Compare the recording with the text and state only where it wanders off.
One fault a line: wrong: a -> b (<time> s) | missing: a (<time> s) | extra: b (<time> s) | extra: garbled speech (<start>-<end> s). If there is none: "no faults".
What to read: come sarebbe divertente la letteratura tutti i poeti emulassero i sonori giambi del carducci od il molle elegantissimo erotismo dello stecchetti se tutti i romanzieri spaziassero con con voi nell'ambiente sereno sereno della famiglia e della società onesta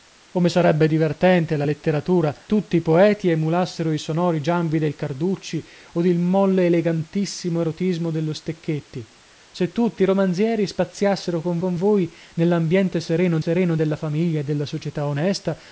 no faults